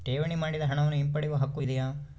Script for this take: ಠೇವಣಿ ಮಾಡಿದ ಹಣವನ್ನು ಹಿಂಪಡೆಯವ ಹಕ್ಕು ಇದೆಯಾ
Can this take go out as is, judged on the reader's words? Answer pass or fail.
pass